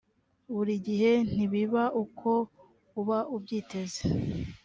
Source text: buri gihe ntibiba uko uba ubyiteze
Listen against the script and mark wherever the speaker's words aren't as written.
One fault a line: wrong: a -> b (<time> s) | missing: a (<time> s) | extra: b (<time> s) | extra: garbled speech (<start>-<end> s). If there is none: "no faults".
no faults